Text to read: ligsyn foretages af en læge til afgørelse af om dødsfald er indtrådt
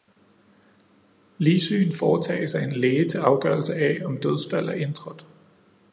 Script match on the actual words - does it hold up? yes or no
yes